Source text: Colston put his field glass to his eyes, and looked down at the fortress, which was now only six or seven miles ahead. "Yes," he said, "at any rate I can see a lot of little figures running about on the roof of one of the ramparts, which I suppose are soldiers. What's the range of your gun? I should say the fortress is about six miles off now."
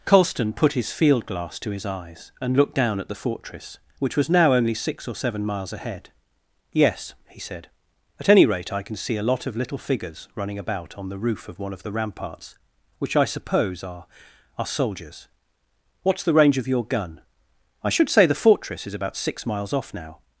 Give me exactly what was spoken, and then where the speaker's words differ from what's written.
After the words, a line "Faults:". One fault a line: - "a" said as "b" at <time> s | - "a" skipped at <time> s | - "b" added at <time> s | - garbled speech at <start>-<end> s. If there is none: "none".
Colston put his field glass to his eyes, and looked down at the fortress, which was now only six or seven miles ahead. "Yes," he said, "at any rate I can see a lot of little figures running about on the roof of one of the ramparts, which I suppose are are soldiers. What's the range of your gun? I should say the fortress is about six miles off now."
Faults:
- "are" added at 14.6 s